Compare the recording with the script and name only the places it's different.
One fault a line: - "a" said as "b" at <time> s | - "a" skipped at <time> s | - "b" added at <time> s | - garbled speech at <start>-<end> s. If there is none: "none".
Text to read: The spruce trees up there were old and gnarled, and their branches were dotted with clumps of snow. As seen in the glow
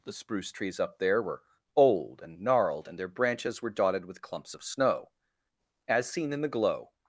none